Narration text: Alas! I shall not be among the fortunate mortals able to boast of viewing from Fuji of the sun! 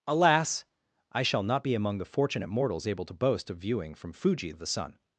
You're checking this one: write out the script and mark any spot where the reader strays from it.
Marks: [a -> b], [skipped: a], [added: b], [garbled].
Alas! I shall not be among the fortunate mortals able to boast of viewing from Fuji of the sun!